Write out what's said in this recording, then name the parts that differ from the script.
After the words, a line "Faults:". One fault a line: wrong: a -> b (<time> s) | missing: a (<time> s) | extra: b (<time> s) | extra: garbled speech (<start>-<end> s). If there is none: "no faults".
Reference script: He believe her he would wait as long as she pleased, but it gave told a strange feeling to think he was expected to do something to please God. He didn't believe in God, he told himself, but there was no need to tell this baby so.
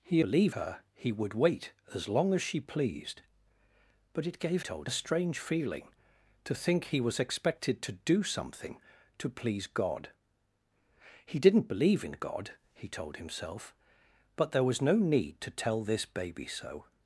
He believe her he would wait as long as she pleased, but it gave told a strange feeling to think he was expected to do something to please God. He didn't believe in God, he told himself, but there was no need to tell this baby so.
Faults:
no faults